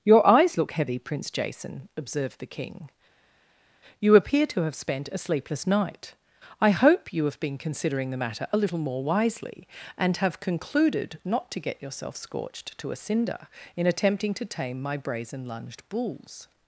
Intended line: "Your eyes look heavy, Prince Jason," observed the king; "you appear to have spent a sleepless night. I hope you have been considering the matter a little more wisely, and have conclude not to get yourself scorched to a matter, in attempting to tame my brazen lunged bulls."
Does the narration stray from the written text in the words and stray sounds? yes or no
yes